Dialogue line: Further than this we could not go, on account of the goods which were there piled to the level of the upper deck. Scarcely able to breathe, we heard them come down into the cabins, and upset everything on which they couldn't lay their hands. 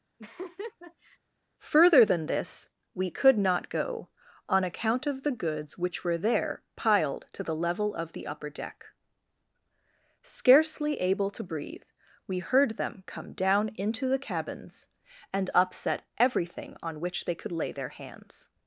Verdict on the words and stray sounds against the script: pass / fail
fail